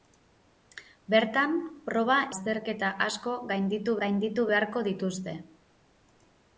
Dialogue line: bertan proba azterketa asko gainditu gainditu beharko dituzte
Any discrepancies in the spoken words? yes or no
no